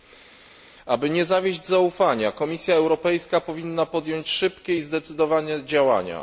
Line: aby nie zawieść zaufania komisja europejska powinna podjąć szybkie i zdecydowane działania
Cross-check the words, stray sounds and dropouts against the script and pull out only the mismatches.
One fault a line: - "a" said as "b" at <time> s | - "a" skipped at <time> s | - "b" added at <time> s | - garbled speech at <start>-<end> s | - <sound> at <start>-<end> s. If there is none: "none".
none